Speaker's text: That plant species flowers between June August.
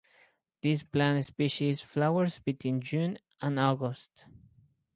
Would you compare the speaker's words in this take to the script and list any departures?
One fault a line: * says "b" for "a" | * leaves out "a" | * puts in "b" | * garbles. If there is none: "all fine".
* says "This" for "That"
* puts in "and"